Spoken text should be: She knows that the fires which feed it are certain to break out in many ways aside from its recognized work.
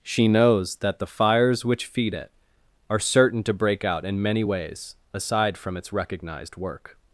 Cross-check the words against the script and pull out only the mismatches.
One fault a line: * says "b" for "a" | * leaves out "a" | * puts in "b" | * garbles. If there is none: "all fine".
all fine